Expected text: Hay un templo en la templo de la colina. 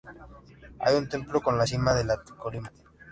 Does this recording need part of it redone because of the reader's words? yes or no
yes